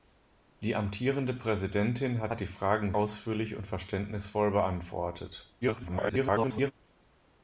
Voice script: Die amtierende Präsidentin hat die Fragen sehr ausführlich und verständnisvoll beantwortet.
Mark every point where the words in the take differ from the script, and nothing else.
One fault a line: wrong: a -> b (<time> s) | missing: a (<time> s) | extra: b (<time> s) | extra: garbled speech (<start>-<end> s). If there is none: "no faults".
extra: hat (2.3 s)
missing: sehr (2.9 s)
extra: garbled speech (5.6-6.7 s)